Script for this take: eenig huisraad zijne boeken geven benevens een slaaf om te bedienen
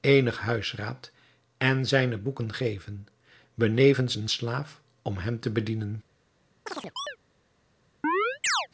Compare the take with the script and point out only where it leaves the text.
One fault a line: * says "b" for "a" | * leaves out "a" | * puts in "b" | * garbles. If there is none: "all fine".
* puts in "en"
* puts in "hem"